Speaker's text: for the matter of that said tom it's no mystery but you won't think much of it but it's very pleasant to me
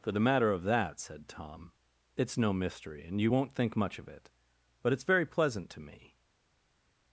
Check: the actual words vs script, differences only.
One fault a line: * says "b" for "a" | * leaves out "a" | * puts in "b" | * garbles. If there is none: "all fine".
* says "and" for "but"